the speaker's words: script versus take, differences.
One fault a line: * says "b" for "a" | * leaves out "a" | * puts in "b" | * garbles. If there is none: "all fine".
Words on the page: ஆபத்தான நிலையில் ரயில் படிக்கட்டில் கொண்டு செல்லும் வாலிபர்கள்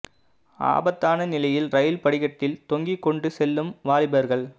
* puts in "தொங்கிக்"